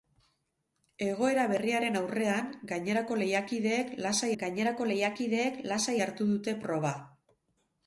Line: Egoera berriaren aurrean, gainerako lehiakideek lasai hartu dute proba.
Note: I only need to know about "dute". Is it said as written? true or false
true